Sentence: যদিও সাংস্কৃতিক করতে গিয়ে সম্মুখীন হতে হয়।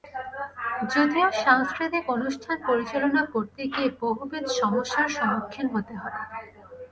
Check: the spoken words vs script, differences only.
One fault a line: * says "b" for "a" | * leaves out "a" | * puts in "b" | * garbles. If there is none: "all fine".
* puts in "অনুষ্ঠান পরিচালনা"
* puts in "বহুবিধ সমস্যার"